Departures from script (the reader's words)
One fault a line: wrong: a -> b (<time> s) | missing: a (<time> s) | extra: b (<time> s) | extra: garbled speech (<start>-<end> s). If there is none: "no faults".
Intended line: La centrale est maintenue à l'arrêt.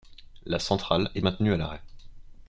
no faults